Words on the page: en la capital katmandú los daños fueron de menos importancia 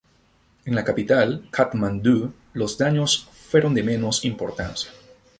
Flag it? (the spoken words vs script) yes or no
no